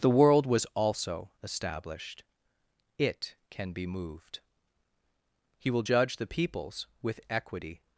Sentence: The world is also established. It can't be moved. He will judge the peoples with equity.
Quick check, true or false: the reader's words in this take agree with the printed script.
false